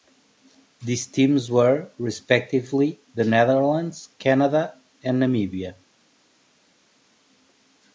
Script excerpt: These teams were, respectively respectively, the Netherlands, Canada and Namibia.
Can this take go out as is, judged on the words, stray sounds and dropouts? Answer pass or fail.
fail